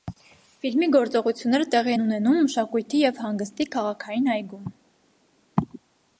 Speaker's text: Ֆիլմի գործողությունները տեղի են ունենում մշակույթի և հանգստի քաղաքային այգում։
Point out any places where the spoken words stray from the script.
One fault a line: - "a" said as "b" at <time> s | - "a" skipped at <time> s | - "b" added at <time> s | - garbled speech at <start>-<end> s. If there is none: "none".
none